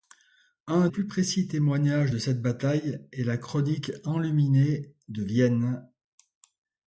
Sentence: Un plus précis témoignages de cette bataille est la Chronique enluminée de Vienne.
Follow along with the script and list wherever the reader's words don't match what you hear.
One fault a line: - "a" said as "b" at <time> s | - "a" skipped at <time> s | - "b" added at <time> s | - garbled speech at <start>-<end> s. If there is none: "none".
none